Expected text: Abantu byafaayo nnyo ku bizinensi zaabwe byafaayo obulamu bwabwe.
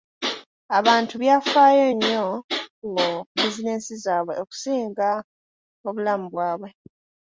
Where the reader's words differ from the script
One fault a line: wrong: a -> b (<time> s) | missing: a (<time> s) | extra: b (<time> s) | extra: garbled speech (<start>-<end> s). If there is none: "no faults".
wrong: byafaayo -> okusinga (4.4 s)